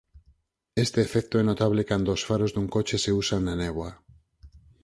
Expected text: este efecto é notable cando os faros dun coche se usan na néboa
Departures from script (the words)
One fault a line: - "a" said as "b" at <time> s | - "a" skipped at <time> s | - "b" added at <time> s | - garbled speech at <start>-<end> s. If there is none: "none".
none